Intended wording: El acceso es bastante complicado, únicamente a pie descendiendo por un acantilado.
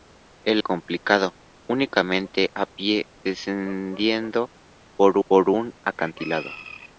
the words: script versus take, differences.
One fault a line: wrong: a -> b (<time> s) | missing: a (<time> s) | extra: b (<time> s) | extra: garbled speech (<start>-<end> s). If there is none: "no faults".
missing: acceso es bastante (0.6 s)
extra: por (5.3 s)